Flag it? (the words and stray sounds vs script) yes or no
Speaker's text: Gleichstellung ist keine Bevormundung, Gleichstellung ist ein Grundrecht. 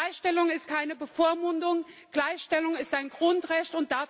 no